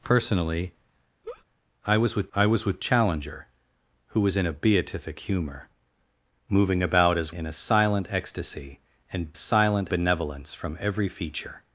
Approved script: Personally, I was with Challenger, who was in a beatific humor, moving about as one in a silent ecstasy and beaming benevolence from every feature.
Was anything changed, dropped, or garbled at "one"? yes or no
yes